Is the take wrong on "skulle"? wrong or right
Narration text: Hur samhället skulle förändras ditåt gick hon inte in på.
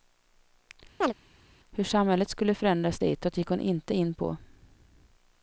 right